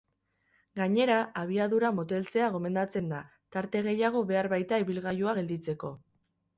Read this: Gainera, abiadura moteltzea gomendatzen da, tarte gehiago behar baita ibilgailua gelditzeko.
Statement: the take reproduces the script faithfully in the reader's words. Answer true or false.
true